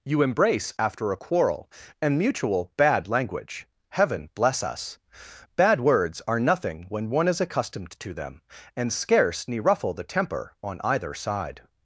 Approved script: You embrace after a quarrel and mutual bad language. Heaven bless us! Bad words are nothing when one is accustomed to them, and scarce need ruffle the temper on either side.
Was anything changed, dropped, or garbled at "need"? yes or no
yes